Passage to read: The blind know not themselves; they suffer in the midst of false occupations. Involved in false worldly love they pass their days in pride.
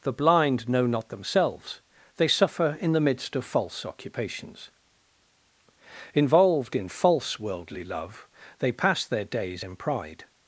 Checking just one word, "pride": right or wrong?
right